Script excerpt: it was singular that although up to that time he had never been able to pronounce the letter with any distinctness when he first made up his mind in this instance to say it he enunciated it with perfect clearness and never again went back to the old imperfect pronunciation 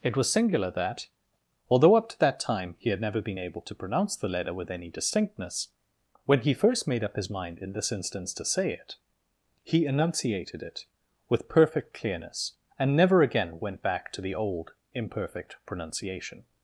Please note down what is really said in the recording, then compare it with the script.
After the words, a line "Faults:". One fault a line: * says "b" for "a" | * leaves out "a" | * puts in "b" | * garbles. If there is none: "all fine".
it was singular that although up to that time he had never been able to pronounce the letter with any distinctness when he first made up his mind in this instance to say it he enunciated it with perfect clearness and never again went back to the old imperfect pronunciation
Faults:
all fine